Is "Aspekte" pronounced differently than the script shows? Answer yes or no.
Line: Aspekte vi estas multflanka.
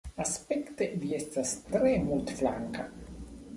no